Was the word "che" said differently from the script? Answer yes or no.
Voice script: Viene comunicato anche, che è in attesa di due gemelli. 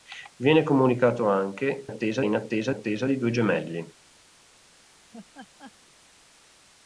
yes